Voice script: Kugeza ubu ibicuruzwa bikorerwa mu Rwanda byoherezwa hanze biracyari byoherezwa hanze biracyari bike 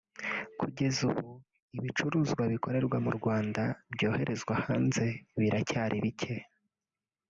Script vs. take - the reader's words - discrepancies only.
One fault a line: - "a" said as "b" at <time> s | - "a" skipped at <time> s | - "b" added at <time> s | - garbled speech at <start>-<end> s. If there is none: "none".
- "byoherezwa hanze biracyari" skipped at 6.0 s